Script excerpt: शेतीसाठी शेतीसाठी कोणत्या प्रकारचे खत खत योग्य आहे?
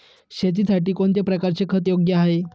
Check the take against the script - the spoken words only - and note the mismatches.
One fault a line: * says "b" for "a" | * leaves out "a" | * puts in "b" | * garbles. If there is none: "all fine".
* leaves out "शेतीसाठी"
* leaves out "खत"